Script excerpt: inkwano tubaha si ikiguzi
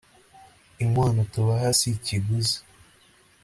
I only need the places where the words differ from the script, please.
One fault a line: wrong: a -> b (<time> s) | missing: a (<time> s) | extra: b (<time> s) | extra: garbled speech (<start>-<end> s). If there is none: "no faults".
no faults